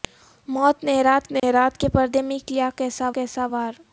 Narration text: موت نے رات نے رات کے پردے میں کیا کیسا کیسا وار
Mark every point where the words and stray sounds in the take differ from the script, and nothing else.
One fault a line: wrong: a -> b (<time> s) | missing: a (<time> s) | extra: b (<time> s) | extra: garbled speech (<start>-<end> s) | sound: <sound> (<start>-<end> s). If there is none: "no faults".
sound: dropout (1.4-1.4 s)